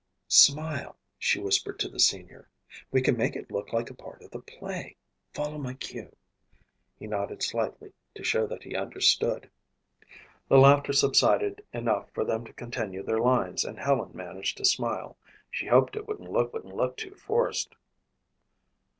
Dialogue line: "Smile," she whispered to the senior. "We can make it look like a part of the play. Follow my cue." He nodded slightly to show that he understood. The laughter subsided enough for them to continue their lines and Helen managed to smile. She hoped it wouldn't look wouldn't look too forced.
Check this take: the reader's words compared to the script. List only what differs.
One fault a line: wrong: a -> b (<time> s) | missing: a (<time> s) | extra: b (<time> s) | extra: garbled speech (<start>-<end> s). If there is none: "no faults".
no faults